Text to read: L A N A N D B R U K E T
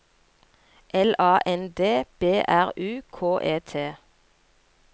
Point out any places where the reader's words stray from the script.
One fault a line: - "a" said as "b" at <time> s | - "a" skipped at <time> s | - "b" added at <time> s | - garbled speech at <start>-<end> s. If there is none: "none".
- "A N" skipped at 1.7 s